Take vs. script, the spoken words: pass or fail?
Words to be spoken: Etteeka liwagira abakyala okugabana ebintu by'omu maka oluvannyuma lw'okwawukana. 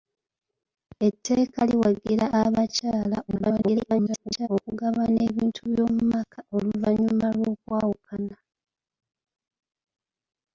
fail